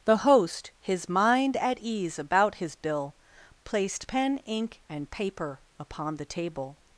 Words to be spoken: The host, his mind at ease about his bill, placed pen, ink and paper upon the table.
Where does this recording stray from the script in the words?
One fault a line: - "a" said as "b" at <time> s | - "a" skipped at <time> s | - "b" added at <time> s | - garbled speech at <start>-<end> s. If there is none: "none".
none